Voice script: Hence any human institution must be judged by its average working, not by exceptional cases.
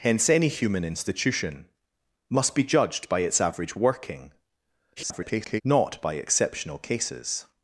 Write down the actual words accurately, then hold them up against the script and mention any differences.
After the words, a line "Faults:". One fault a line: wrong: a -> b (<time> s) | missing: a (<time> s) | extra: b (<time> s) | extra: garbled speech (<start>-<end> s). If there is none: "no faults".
Hence any human institution must be judged by its average working, [garbled] not by exceptional cases.
Faults:
extra: garbled speech (5.0-5.6 s)